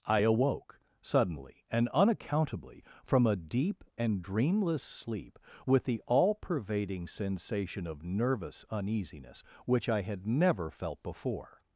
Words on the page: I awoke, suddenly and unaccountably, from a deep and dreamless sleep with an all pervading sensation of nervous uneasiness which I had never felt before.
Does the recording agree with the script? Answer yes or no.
no